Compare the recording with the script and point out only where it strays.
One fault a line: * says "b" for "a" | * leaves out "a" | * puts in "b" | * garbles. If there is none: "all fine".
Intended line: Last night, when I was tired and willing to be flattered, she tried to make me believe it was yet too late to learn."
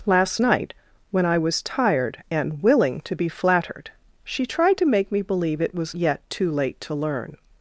all fine